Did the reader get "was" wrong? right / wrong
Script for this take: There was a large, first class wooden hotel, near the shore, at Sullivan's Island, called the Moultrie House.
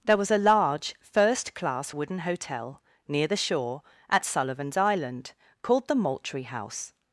right